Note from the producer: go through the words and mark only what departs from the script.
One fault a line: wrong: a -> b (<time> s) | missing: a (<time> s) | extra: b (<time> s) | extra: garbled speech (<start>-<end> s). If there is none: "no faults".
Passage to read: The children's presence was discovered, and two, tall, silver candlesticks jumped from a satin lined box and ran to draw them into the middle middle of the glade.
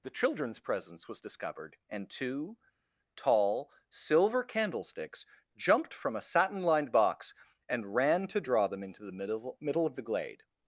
no faults